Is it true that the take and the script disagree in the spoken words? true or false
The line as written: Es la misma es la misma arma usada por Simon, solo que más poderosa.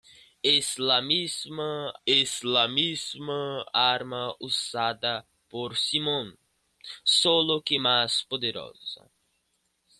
false